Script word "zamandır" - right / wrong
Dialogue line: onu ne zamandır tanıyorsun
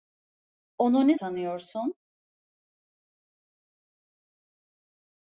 wrong